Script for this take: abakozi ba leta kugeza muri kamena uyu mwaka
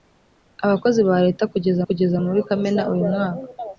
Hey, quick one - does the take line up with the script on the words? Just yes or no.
no